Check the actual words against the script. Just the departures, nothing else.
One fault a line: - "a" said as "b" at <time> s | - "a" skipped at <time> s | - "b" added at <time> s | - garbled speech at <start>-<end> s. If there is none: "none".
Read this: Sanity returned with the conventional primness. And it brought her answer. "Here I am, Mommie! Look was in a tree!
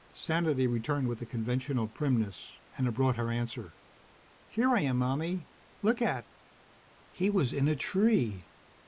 - "at He" added at 6.0 s